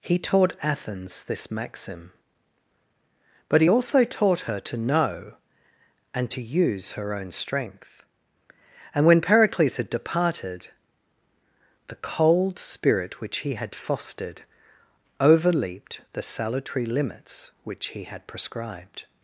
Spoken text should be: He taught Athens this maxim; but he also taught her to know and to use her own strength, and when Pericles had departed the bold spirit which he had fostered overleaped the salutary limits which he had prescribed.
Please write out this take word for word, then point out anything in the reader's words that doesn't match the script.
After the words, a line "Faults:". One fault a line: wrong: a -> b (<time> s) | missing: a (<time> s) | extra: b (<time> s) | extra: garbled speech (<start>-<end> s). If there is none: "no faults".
He taught Athens this maxim; but he also taught her to know and to use her own strength, and when Pericles had departed the cold spirit which he had fostered overleaped the salutary limits which he had prescribed.
Faults:
wrong: bold -> cold (12.0 s)